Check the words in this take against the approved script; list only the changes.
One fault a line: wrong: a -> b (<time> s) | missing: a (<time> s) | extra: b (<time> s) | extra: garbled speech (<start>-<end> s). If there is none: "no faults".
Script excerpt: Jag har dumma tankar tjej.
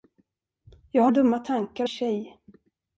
no faults